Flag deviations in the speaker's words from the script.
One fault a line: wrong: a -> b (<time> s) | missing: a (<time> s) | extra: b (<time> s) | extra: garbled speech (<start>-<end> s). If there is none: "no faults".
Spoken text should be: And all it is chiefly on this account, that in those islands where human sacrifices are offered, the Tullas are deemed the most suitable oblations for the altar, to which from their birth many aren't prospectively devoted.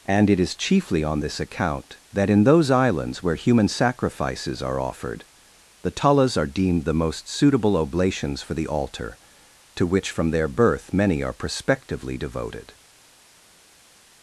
missing: all (0.3 s)
wrong: aren't -> are (11.2 s)